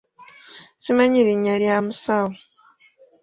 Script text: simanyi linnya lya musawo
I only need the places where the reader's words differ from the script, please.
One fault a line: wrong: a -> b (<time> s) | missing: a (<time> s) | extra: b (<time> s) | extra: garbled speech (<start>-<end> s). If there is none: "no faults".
no faults